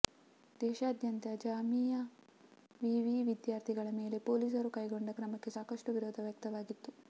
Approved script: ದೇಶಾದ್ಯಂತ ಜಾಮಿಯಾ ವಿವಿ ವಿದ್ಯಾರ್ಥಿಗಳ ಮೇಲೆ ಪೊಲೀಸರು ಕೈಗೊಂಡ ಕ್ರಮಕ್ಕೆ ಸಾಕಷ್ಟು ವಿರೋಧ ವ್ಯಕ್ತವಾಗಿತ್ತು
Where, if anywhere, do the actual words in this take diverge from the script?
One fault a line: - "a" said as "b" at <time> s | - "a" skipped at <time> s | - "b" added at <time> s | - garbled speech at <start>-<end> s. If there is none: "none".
none